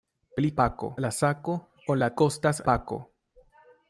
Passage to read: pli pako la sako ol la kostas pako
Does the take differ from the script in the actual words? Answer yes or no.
no